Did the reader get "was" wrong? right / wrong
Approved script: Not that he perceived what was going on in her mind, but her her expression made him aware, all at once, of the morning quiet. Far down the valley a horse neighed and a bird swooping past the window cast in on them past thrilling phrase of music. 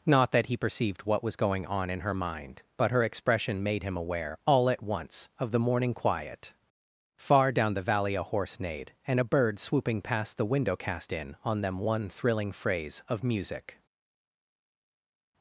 right